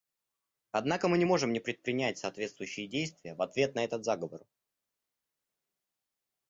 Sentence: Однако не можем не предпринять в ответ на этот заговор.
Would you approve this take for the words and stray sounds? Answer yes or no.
no